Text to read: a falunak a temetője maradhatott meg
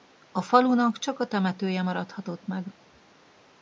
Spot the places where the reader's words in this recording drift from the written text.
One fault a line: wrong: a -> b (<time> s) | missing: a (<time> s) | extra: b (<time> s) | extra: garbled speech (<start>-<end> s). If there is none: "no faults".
extra: csak (1.0 s)